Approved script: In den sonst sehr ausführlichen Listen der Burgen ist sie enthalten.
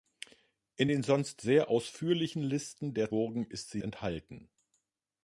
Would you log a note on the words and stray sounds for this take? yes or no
no